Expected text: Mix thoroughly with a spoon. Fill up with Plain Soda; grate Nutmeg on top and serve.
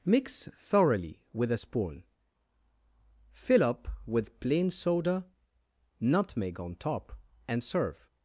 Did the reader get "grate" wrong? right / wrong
wrong